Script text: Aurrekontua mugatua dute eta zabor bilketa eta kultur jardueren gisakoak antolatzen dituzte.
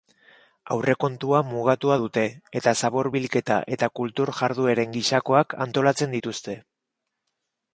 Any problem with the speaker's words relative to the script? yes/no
no